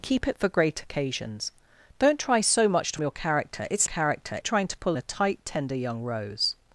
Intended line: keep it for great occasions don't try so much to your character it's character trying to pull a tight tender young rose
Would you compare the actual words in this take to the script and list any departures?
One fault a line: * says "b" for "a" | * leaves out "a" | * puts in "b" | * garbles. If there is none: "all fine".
all fine